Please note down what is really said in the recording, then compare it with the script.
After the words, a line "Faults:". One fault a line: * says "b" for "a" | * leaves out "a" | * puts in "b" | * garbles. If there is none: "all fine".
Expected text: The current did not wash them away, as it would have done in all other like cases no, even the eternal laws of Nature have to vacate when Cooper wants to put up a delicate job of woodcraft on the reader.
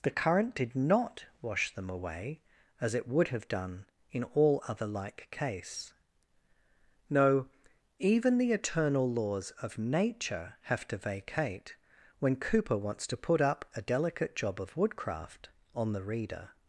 The current did not wash them away, as it would have done in all other like case no, even the eternal laws of Nature have to vacate when Cooper wants to put up a delicate job of woodcraft on the reader.
Faults:
* says "case" for "cases"